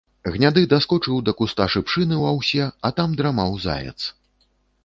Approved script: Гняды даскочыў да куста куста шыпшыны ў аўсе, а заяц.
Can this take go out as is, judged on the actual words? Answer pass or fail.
fail